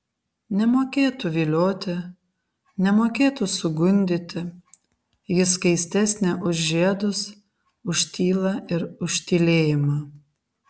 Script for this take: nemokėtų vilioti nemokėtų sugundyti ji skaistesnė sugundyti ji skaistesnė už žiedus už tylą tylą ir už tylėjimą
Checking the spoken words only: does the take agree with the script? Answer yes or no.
no